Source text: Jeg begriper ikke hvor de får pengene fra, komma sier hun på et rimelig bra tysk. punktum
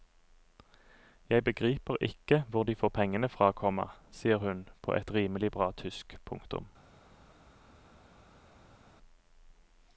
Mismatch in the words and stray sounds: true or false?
false